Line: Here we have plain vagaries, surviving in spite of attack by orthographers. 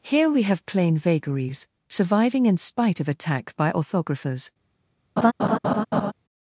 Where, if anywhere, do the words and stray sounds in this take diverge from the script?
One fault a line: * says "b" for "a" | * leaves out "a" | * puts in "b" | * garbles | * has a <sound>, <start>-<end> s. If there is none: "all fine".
* has a laugh, 5.2-6.1 s